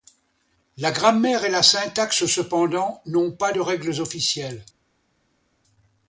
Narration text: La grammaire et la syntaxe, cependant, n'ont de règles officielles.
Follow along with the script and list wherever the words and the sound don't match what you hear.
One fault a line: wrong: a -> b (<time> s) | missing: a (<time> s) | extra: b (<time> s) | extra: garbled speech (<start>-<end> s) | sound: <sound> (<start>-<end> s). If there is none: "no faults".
extra: pas (3.3 s)